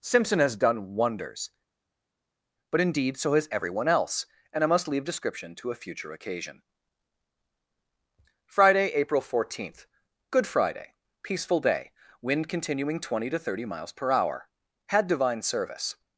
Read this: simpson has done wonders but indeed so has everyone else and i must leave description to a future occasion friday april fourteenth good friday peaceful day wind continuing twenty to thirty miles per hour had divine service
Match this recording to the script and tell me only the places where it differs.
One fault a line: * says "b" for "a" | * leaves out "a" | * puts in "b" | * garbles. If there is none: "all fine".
all fine